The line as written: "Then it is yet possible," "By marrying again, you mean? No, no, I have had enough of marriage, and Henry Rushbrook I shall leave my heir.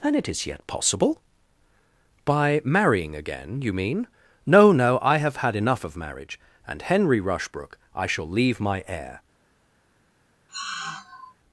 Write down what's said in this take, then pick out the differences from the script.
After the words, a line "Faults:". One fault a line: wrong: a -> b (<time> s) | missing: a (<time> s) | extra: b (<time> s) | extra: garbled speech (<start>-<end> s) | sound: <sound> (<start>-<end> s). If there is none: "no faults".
"Then it is yet possible," "By marrying again, you mean? No, no, I have had enough of marriage, and Henry Rushbrook I shall leave my heir.
Faults:
sound: sigh (10.5-11.3 s)